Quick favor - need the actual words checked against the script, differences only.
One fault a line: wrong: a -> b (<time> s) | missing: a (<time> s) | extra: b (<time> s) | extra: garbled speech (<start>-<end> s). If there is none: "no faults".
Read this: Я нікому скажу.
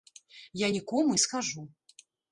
no faults